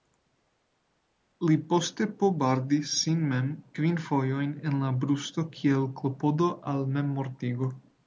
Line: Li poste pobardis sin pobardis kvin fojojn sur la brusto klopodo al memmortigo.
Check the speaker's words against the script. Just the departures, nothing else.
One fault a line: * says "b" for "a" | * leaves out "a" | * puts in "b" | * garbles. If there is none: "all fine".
* says "mem" for "pobardis"
* says "en" for "sur"
* puts in "kiel"